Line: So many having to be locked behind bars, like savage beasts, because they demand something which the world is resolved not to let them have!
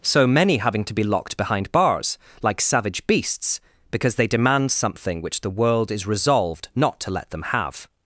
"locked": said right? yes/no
yes